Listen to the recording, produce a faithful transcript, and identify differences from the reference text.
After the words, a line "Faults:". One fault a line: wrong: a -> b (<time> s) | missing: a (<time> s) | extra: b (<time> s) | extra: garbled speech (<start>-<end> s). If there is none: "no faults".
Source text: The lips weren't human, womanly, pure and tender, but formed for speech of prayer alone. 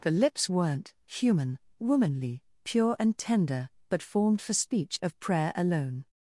The lips weren't human, womanly, pure and tender, but formed for speech of prayer alone.
Faults:
no faults